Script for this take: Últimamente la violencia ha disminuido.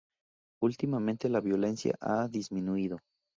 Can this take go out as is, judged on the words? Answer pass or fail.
pass